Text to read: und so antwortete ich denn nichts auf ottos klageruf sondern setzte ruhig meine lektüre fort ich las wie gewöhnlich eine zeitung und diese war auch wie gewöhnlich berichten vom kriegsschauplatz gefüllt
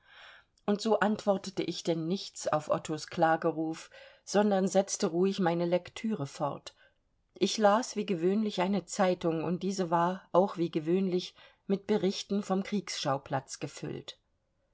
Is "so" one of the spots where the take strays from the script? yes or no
no